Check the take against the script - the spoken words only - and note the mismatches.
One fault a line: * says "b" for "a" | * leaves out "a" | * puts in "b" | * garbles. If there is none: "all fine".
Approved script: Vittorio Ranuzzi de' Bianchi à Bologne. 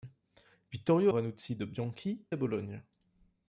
all fine